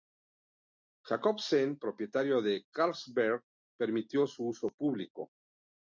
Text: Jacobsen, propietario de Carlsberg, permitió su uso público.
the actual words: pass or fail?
pass